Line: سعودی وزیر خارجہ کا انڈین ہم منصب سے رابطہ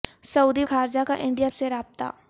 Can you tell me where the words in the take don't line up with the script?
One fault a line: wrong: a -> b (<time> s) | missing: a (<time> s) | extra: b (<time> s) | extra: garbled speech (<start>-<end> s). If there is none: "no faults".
missing: وزیر (0.6 s)
missing: ہم منصب (1.5 s)